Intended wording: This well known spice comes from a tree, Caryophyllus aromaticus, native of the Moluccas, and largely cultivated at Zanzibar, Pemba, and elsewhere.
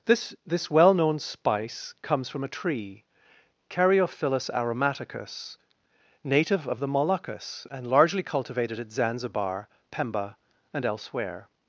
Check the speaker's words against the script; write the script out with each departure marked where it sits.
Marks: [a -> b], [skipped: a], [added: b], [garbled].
This [added: this] well known spice comes from a tree, Caryophyllus aromaticus, native of the Moluccas, and largely cultivated at Zanzibar, Pemba, and elsewhere.